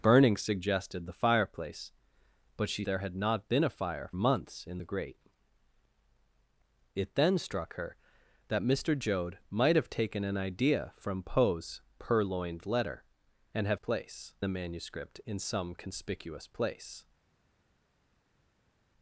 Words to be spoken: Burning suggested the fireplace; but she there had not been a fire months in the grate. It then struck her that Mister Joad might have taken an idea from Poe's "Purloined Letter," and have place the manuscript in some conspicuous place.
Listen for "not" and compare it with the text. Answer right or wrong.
right